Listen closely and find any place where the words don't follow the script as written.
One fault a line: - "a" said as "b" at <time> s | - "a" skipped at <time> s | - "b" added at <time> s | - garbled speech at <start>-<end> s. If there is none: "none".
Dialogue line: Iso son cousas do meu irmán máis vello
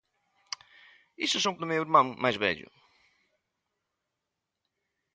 - "cousas" skipped at 1.5 s